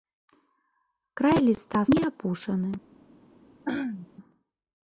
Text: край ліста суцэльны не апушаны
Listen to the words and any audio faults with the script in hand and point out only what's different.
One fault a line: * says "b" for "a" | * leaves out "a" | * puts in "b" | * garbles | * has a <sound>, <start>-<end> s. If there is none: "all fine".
* leaves out "суцэльны"
* has a throat clearing, 3.7-4.1 s